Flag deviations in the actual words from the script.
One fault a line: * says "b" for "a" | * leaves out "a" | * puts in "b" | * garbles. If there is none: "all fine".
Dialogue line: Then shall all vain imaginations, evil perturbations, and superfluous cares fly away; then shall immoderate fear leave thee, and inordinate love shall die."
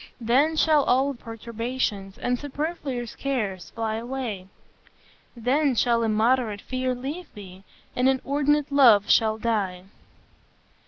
* leaves out "vain imaginations evil"